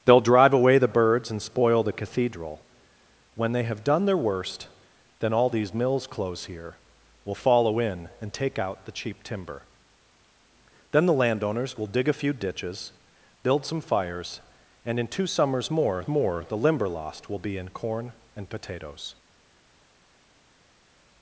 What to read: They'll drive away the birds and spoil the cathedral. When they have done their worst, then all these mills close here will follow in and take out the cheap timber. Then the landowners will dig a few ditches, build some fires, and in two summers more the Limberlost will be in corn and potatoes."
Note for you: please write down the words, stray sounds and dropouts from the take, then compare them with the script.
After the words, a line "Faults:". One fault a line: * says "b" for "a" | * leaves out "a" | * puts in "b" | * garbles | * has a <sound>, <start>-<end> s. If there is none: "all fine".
They'll drive away the birds and spoil the cathedral. When they have done their worst, then all these mills close here will follow in and take out the cheap timber. Then the landowners will dig a few ditches, build some fires, and in two summers more more the Limberlost will be in corn and potatoes."
Faults:
* puts in "more"